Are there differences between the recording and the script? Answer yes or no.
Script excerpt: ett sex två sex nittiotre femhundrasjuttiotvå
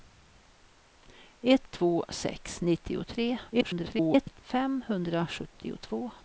yes